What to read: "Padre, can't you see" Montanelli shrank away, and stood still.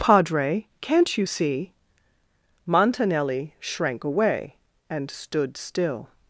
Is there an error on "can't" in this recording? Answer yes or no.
no